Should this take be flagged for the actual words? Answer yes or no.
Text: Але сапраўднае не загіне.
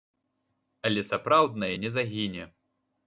no